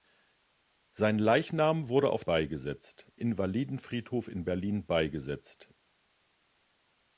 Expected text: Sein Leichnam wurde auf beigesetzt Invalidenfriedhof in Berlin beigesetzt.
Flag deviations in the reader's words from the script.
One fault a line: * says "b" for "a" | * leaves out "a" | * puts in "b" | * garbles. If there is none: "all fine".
all fine